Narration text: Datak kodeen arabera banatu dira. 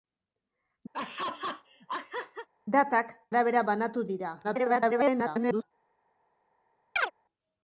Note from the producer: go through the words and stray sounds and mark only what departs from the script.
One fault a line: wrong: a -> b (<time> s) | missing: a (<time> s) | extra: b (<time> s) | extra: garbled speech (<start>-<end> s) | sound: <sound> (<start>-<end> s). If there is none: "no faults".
sound: laugh (0.9-2.5 s)
missing: kodeen (3.2 s)
extra: garbled speech (4.4-5.6 s)
sound: chirp (7.0-7.1 s)